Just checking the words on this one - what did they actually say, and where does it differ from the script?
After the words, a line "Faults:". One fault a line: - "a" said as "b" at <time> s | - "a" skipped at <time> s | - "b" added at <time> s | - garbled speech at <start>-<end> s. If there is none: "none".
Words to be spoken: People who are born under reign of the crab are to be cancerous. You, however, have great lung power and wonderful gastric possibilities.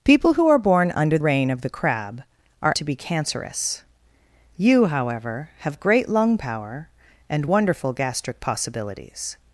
People who are born under reign of the crab are to be cancerous. You, however, have great lung power and wonderful gastric possibilities.
Faults:
none